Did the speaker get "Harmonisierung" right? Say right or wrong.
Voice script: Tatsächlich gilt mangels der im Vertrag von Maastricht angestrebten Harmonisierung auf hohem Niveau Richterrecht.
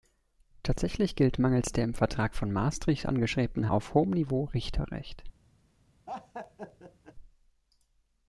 wrong